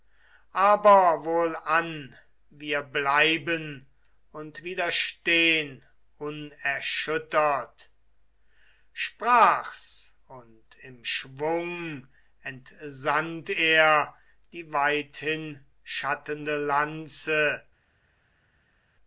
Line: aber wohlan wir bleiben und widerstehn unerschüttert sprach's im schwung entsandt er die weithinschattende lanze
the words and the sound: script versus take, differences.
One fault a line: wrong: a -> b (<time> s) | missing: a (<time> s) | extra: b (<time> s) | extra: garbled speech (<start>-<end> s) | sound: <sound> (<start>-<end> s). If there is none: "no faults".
extra: und (10.3 s)